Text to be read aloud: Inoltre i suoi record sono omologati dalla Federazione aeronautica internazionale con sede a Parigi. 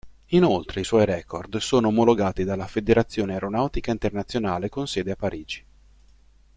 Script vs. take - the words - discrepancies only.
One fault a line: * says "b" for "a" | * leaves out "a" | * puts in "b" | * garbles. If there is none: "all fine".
all fine